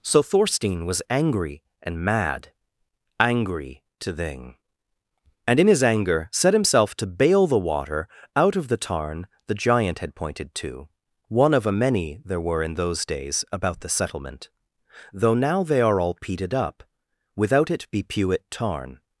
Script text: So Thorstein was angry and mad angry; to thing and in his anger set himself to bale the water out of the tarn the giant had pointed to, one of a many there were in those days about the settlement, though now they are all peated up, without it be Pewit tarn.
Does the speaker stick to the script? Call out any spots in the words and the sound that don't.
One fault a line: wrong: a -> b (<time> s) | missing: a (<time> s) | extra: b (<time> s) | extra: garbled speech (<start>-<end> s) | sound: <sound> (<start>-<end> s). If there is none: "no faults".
no faults